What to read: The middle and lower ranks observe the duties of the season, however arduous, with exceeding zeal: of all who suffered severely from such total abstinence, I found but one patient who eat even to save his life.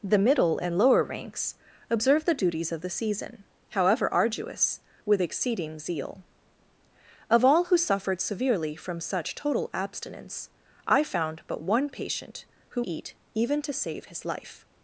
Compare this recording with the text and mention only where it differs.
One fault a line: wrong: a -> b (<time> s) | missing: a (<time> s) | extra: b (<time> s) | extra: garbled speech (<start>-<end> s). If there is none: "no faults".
no faults